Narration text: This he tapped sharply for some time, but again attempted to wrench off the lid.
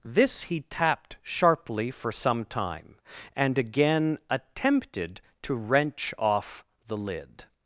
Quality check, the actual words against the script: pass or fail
fail